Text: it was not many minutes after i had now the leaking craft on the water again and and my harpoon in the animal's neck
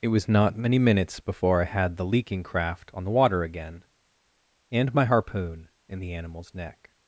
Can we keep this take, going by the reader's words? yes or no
no